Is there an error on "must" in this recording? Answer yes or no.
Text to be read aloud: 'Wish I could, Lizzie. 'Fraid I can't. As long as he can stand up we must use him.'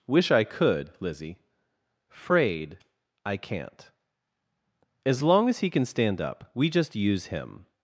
yes